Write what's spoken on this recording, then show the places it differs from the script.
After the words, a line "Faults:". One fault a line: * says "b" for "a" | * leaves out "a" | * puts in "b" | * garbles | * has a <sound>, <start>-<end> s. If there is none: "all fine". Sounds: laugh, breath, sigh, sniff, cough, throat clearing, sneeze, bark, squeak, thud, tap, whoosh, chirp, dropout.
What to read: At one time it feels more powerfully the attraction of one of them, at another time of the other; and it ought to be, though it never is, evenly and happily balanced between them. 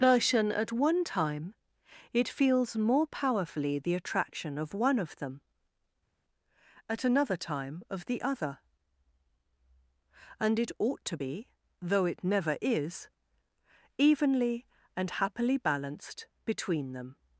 version At one time it feels more powerfully the attraction of one of them, at another time of the other; and it ought to be, though it never is, evenly and happily balanced between them.
Faults:
* puts in "version"